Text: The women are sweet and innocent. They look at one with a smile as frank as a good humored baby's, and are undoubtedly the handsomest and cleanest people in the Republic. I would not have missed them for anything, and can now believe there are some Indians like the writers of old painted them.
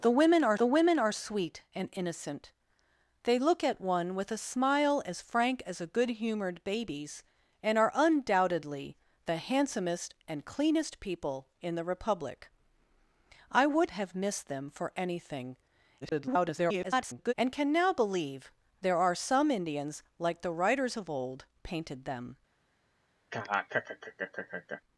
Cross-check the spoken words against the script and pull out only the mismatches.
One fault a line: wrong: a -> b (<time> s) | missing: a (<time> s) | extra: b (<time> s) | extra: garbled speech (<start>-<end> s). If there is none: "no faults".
extra: the women are (0.6 s)
missing: not (13.9 s)
extra: garbled speech (16.0-17.3 s)